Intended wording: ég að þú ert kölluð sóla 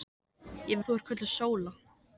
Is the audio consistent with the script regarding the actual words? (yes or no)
yes